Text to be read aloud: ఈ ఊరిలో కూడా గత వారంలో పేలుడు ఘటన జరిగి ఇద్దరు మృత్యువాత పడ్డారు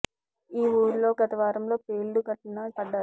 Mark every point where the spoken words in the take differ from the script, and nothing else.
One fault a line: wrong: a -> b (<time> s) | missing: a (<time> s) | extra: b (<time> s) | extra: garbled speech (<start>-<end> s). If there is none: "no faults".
missing: కూడా (1.1 s)
missing: జరిగి ఇద్దరు మృత్యువాత (2.7 s)